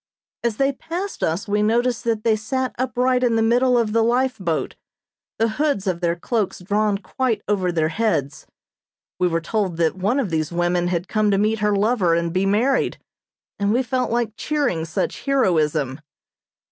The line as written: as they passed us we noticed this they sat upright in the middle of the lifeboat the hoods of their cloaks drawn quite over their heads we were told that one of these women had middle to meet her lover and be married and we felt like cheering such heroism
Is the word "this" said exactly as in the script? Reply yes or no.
no